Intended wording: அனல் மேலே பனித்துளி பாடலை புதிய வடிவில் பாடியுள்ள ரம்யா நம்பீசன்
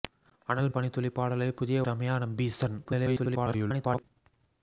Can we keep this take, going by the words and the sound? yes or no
no